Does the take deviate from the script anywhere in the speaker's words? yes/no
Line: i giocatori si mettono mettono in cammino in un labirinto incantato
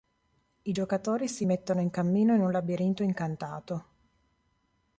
yes